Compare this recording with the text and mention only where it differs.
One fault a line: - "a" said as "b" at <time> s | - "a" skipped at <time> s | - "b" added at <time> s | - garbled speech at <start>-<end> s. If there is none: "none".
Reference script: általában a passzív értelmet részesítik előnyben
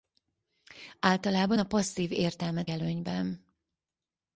- "részesítik" skipped at 2.7 s